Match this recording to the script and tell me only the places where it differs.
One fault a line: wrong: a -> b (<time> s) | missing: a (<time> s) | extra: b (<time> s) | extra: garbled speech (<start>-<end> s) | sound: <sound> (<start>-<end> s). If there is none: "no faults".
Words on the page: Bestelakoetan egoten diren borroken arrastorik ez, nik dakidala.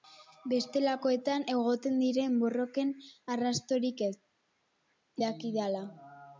missing: nik (4.2 s)